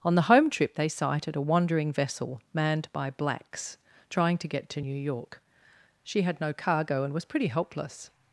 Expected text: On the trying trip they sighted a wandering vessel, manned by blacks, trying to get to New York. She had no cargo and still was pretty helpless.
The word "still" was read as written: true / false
false